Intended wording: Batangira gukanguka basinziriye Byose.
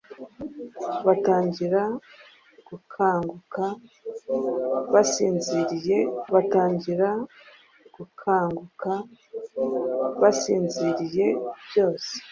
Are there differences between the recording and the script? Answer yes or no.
yes